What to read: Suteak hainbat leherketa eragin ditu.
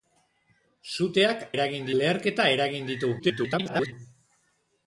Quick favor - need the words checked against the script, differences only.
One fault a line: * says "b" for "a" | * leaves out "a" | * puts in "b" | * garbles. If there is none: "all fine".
* says "eragin" for "hainbat"
* garbles